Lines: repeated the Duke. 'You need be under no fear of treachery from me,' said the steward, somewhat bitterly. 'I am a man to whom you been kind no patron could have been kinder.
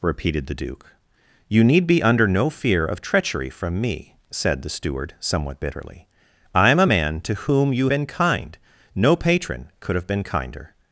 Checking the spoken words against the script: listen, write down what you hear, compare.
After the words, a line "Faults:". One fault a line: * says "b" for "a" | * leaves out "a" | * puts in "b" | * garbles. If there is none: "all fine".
repeated the Duke. 'You need be under no fear of treachery from me,' said the steward, somewhat bitterly. 'I am a man to whom you been kind no patron could have been kinder.
Faults:
all fine